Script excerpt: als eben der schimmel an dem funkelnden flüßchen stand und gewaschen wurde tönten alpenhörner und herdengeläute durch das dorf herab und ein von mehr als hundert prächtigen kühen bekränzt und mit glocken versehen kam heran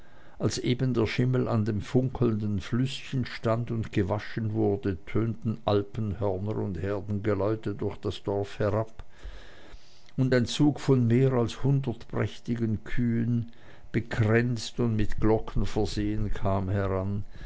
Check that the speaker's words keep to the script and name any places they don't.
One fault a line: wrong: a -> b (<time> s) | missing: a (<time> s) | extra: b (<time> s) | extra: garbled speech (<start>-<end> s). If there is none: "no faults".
extra: zug (10.5 s)